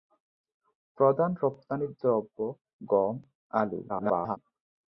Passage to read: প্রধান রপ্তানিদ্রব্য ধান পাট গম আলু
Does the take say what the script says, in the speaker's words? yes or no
no